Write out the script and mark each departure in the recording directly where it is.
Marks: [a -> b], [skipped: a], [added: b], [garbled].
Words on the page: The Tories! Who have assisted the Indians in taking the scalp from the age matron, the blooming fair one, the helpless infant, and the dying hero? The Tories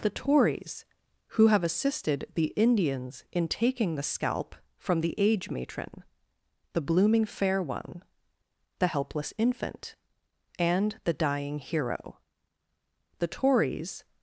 The Tories! Who have assisted the Indians in taking the scalp from the age matron, the blooming fair one, the helpless infant, and the dying hero? The Tories